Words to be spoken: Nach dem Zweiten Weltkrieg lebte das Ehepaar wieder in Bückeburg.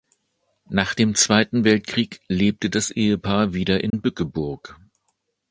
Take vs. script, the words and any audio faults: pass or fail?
fail